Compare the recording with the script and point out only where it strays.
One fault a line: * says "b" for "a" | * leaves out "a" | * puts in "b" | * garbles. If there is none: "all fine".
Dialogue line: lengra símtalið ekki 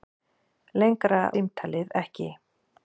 all fine